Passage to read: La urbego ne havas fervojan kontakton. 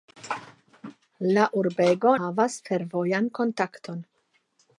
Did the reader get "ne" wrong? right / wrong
wrong